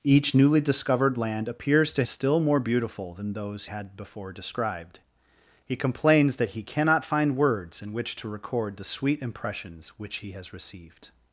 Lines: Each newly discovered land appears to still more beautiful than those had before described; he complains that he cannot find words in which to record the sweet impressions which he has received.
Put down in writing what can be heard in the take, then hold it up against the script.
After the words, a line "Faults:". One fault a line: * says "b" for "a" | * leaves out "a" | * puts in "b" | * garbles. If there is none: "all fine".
Each newly discovered land appears to still more beautiful than those had before described; he complains that he cannot find words in which to record the sweet impressions which he has received.
Faults:
all fine